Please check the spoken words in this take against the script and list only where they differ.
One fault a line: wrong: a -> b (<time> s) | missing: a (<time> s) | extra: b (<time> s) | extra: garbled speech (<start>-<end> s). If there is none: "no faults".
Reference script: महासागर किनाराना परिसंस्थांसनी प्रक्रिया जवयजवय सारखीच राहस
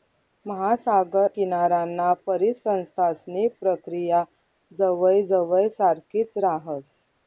no faults